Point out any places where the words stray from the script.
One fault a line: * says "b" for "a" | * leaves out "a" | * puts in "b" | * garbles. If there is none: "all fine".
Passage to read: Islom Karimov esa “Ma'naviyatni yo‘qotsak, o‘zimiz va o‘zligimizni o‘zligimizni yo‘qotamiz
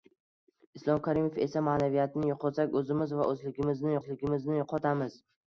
all fine